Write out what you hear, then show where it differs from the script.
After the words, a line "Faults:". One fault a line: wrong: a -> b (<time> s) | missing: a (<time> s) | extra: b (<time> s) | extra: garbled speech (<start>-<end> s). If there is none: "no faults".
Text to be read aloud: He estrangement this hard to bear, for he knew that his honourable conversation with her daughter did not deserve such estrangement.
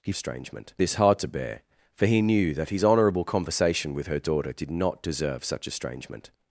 He estrangement this hard to bear, for he knew that his honourable conversation with her daughter did not deserve such estrangement.
Faults:
no faults